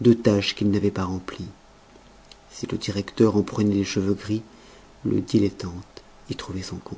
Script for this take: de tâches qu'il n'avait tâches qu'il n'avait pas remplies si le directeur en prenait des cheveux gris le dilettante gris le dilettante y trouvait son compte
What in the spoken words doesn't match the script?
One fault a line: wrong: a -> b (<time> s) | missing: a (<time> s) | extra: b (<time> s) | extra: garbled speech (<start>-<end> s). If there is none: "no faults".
missing: tâches qu'il n'avait (0.9 s)
missing: gris le dilettante (6.0 s)